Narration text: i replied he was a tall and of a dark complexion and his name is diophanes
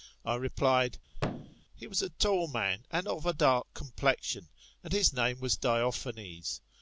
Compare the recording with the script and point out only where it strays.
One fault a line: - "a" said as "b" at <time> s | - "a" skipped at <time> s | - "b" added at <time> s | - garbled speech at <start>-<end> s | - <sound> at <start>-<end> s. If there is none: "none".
- thud at 1.1-1.6 s
- "man" added at 2.5 s
- "is" said as "was" at 5.4 s